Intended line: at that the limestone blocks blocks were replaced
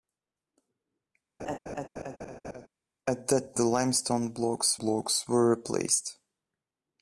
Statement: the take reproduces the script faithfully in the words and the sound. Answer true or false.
false